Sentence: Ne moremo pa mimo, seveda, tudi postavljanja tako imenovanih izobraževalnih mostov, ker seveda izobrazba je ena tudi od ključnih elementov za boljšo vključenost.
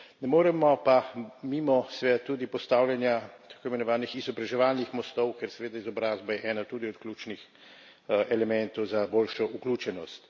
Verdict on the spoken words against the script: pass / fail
pass